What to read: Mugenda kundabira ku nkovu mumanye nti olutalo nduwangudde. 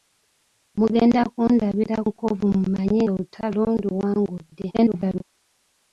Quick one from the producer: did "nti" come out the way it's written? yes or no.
no